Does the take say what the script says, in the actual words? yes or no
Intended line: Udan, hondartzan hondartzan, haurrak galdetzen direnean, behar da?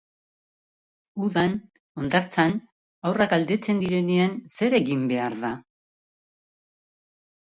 no